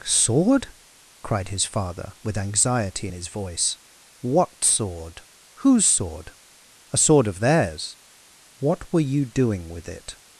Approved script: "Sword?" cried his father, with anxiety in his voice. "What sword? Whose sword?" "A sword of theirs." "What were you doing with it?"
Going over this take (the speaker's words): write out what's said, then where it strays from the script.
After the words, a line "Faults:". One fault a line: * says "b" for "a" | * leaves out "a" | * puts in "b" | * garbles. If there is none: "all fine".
"Sword?" cried his father, with anxiety his voice. "What sword? Whose sword?" "A sword of theirs." "What were you doing with it?"
Faults:
* leaves out "in"